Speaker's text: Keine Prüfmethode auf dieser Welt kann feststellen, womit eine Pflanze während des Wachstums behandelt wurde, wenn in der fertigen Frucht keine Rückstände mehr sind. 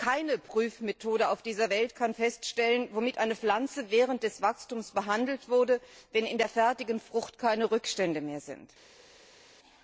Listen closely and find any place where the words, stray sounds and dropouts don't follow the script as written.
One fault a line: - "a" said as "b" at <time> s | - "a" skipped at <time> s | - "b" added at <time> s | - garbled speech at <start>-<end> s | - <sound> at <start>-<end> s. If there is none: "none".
none